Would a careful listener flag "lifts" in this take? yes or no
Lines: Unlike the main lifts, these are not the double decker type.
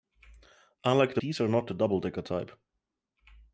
yes